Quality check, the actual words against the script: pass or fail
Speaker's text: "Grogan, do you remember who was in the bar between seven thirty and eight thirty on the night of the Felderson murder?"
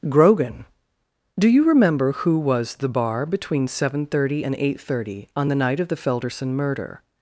fail